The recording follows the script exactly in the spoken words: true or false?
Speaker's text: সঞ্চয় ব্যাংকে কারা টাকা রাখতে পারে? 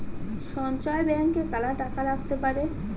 true